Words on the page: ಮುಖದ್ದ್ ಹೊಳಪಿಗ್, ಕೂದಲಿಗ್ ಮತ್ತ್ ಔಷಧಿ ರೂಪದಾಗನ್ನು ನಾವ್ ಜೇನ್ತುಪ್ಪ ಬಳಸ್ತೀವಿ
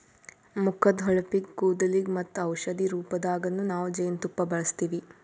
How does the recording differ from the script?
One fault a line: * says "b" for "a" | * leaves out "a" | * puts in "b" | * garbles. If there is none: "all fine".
all fine